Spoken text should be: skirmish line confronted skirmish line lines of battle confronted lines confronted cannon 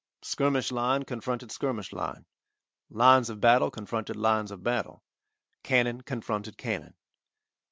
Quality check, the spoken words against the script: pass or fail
fail